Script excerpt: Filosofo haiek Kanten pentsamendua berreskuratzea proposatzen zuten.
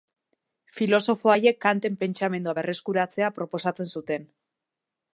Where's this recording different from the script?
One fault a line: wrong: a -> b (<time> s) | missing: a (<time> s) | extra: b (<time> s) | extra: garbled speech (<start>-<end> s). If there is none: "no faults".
no faults